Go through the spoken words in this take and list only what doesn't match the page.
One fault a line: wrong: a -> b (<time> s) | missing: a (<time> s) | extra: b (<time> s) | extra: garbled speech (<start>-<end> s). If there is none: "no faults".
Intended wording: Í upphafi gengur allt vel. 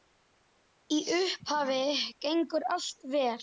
no faults